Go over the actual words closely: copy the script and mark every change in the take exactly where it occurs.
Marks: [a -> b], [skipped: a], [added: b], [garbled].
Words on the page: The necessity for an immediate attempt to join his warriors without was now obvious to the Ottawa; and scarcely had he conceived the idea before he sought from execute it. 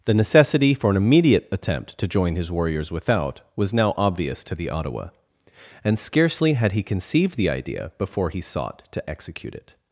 The necessity for an immediate attempt to join his warriors without was now obvious to the Ottawa; and scarcely had he conceived the idea before he sought [from -> to] execute it.